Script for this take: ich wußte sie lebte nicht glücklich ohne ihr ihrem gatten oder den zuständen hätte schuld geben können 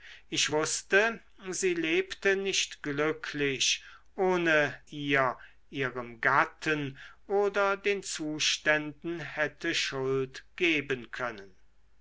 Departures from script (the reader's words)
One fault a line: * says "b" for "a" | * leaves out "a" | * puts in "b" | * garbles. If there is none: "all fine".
all fine